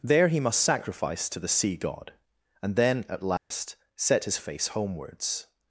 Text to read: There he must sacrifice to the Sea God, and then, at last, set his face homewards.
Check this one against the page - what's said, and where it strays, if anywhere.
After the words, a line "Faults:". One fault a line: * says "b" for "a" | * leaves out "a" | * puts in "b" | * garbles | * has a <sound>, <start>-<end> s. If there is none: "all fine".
There he must sacrifice to the Sea God, and then, at last, set his face homewards.
Faults:
* has a dropout, 3.4-3.5 s